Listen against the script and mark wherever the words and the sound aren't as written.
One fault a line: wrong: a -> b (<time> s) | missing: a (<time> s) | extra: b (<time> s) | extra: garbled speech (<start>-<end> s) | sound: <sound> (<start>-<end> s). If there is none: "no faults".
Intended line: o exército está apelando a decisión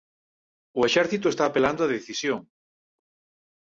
no faults